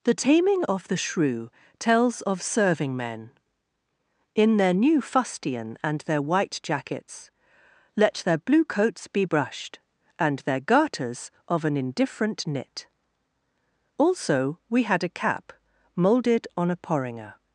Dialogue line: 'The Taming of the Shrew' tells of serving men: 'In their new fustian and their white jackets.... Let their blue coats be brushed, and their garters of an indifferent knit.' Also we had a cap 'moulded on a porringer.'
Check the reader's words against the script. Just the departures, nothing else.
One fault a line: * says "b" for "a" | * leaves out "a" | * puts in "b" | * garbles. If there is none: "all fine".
all fine